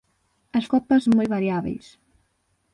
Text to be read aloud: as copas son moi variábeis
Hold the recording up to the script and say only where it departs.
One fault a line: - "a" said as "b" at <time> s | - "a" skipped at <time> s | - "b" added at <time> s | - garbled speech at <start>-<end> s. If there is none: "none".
none